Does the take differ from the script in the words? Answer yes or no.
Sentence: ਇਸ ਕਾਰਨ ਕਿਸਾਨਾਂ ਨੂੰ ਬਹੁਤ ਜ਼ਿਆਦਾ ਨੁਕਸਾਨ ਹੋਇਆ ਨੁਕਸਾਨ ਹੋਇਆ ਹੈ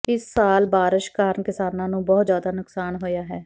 yes